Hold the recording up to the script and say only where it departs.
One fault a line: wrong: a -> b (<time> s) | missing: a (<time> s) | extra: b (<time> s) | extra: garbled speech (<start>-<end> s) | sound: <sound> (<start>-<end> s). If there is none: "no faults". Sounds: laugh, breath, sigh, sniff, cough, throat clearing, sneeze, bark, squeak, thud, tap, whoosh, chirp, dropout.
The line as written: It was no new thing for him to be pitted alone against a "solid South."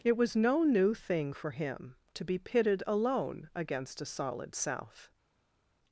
no faults